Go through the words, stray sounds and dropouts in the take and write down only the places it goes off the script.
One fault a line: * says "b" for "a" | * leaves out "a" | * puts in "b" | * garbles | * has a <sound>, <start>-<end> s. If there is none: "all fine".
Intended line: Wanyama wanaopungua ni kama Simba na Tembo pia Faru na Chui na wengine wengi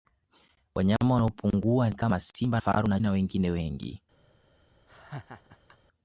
* leaves out "ni"
* leaves out "na Tembo pia"
* leaves out "Chui"
* has a laugh, 4.9-5.8 s